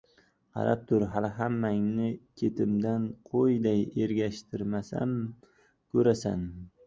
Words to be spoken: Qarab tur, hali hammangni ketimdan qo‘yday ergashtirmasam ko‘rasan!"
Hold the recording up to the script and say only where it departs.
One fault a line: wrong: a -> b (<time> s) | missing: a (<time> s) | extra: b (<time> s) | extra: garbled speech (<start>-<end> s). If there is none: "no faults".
no faults